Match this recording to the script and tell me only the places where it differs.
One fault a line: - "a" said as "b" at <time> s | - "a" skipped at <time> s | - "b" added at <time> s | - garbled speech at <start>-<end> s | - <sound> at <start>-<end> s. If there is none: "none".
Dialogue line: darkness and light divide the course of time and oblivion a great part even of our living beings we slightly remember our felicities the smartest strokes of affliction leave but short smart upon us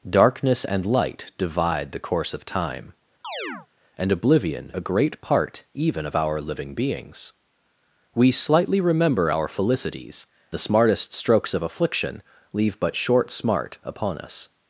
- chirp at 3.2-3.7 s